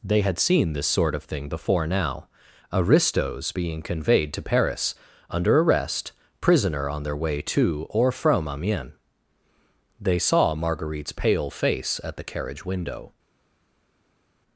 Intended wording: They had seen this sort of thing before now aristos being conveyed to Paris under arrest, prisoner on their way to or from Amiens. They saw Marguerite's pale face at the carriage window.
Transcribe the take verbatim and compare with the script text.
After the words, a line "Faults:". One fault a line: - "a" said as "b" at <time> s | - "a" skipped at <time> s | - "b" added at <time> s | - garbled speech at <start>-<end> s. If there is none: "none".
They had seen this sort of thing before now aristos being conveyed to Paris under arrest, prisoner on their way to or from Amiens. They saw Marguerite's pale face at the carriage window.
Faults:
none